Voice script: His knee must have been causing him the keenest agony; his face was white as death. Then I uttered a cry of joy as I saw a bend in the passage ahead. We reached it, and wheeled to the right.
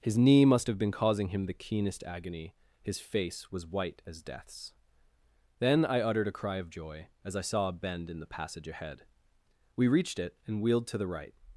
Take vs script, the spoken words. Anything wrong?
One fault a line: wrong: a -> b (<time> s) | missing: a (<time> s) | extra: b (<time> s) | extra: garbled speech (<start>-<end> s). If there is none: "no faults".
wrong: death -> deaths (4.2 s)